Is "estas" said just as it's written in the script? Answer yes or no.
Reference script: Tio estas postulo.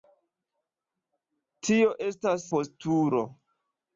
yes